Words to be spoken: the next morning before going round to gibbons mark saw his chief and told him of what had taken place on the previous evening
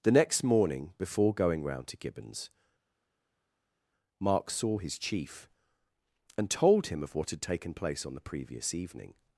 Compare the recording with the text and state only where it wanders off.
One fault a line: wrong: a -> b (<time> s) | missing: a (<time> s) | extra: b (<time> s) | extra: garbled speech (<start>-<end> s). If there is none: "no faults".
no faults